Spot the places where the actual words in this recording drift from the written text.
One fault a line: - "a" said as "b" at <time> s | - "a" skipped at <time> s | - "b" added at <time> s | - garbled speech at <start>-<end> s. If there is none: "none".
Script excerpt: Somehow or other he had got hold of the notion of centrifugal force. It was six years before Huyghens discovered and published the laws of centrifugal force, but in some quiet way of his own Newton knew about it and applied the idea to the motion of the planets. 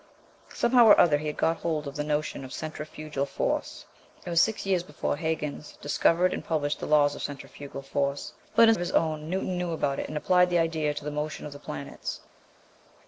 - "some quiet way" skipped at 8.7 s